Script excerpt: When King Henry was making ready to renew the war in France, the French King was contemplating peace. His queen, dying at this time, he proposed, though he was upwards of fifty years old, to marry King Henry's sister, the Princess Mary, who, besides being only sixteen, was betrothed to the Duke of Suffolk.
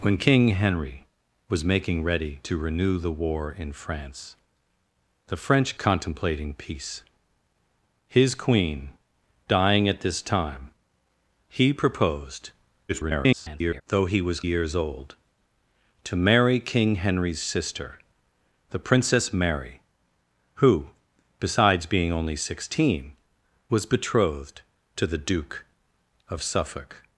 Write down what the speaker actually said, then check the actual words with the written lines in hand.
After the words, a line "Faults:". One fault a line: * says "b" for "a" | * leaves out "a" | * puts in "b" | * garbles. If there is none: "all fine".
When King Henry was making ready to renew the war in France, the French Contemplating peace. His queen, dying at this time, he proposed, [garbled] though he was years old, to marry King Henry's sister, the Princess Mary, who, besides being only sixteen, was betrothed to the Duke of Suffolk.
Faults:
* leaves out "King was"
* garbles
* leaves out "upwards of fifty"